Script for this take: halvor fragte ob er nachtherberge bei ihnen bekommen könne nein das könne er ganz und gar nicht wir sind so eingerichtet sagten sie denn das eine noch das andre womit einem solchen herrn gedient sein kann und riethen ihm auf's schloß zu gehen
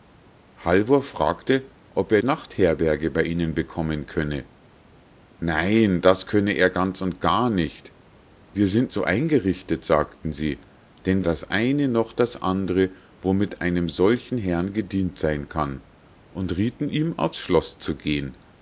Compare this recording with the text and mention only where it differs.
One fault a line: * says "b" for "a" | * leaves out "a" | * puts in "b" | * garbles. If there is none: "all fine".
all fine